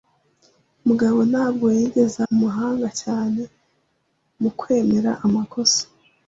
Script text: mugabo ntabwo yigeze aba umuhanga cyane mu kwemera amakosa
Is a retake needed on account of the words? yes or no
yes